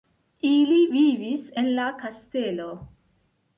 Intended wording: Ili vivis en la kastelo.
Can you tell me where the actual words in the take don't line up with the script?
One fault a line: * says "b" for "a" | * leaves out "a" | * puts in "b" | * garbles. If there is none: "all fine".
all fine